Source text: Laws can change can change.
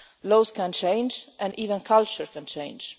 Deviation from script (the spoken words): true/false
true